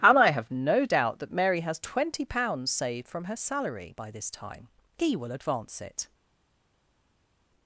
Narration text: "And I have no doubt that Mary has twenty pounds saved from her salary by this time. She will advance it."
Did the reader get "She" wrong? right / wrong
wrong